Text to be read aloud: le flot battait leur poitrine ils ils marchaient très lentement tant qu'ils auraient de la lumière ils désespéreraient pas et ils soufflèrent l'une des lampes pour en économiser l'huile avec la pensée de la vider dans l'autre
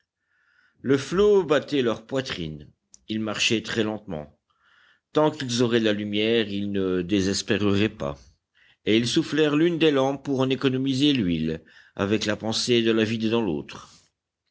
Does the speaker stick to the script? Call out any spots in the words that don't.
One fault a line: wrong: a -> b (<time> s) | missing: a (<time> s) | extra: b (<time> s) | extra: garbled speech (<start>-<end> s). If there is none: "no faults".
missing: ils (3.2 s)
extra: ne (6.7 s)